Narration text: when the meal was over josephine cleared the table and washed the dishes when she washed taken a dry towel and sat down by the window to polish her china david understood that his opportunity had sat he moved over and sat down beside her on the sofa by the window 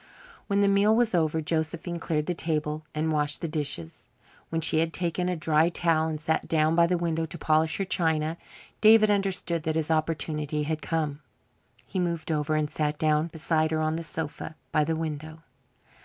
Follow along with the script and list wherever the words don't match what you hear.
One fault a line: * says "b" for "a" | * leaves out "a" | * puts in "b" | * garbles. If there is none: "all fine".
* says "had" for "washed"
* says "come" for "sat"